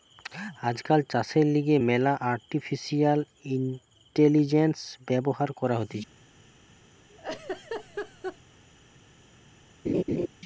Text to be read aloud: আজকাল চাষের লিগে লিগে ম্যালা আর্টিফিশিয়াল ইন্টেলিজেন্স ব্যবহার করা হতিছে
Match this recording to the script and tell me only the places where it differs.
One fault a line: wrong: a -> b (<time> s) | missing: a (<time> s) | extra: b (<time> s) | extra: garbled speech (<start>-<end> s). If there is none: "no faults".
missing: লিগে (1.8 s)